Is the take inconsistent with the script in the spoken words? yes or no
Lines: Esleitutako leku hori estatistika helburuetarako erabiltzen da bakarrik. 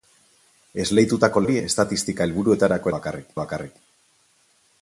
yes